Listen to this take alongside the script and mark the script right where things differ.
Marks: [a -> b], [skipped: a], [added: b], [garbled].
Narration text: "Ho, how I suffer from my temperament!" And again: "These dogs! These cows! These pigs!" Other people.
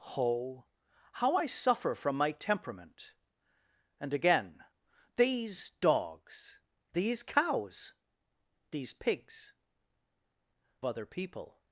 "Ho, how I suffer from my temperament!" And again: "These dogs! These cows! These pigs!" Other people.